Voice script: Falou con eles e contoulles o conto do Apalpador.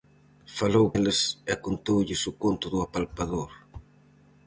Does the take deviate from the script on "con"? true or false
true